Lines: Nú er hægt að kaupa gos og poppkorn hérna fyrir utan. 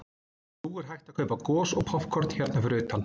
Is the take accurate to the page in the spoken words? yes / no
yes